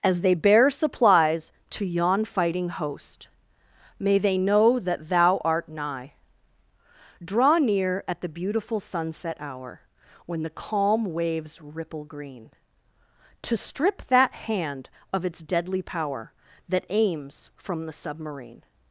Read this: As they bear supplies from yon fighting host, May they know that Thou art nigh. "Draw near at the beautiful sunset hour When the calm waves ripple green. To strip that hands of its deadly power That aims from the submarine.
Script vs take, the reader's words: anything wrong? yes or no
yes